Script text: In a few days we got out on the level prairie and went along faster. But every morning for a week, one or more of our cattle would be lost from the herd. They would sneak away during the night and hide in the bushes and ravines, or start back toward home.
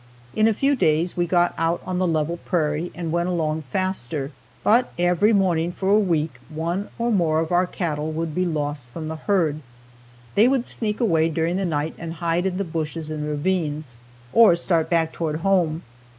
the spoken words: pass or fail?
pass